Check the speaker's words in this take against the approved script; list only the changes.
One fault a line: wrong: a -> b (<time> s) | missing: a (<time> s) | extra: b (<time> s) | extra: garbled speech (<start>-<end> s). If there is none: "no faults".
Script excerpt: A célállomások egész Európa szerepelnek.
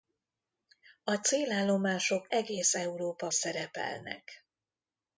no faults